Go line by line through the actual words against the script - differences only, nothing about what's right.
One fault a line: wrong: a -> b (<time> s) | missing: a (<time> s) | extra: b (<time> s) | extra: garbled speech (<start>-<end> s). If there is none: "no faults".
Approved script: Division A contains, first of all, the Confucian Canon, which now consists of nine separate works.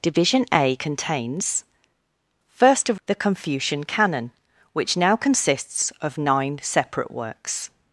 missing: all (3.0 s)